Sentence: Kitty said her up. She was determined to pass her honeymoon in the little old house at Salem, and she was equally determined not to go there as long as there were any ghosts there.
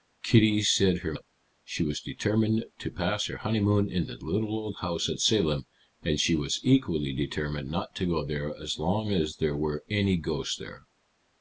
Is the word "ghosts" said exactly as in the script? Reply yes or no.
yes